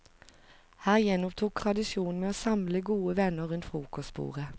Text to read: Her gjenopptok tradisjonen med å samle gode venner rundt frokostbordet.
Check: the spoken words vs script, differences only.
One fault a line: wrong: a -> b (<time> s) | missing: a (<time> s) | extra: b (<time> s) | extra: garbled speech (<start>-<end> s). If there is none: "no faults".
no faults